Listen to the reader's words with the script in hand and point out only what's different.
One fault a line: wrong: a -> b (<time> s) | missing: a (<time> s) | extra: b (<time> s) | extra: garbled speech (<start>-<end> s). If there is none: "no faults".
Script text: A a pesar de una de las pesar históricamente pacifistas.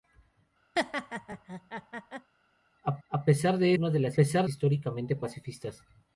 no faults